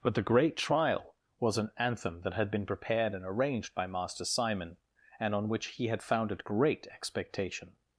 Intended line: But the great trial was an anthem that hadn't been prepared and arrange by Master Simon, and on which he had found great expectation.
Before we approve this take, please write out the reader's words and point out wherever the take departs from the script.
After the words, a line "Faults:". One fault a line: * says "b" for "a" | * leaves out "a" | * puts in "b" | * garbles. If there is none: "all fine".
But the great trial was an anthem that had been prepared and arranged by Master Simon, and on which he had founded great expectation.
Faults:
* says "had" for "hadn't"
* says "arranged" for "arrange"
* says "founded" for "found"